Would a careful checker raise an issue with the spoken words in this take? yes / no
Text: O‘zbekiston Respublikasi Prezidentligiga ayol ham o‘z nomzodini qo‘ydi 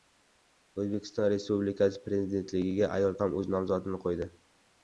no